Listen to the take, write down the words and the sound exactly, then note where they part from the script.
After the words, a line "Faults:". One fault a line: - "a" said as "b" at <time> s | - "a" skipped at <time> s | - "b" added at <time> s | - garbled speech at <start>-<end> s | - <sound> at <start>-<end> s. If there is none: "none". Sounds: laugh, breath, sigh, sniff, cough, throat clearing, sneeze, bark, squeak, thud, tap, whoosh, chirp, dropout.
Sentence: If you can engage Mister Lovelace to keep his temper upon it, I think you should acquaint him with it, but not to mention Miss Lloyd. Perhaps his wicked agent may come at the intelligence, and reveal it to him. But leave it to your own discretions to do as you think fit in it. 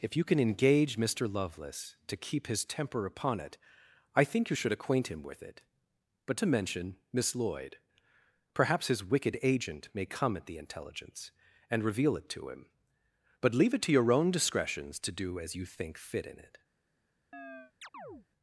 If you can engage Mister Lovelace to keep his temper upon it, I think you should acquaint him with it, but to mention Miss Lloyd. Perhaps his wicked agent may come at the intelligence, and reveal it to him. But leave it to your own discretions to do as you think fit in it.
Faults:
- "not" skipped at 6.4 s
- chirp at 17.3-18.3 s